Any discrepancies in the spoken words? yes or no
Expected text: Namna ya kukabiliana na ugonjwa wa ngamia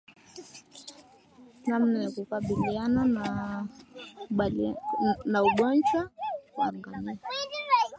no